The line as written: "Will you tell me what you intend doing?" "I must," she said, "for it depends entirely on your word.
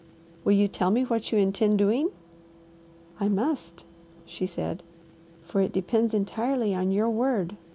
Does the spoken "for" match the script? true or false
true